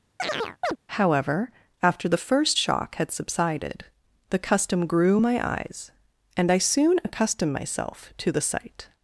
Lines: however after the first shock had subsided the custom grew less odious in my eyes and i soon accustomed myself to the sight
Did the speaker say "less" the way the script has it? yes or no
no